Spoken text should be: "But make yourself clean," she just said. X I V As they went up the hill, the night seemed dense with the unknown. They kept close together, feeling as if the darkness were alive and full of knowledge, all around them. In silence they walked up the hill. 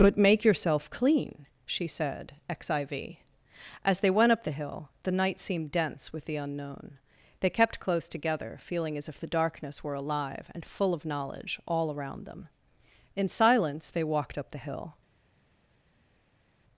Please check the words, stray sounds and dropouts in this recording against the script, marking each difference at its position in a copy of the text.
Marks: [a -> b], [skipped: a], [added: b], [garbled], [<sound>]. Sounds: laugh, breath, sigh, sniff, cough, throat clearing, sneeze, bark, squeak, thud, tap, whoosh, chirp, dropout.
"But make yourself clean," she [skipped: just] said. X I V As they went up the hill, the night seemed dense with the unknown. They kept close together, feeling as if the darkness were alive and full of knowledge, all around them. In silence they walked up the hill.